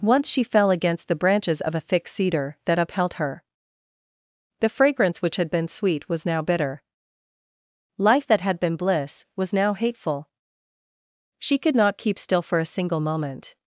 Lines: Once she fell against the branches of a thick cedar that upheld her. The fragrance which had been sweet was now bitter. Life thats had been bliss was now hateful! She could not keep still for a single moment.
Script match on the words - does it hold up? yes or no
no